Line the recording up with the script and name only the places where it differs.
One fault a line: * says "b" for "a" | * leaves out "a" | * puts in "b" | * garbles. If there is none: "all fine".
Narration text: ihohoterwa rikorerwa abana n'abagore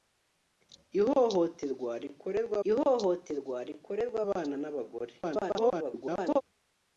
* puts in "ihohoterwa rikorerwa"
* garbles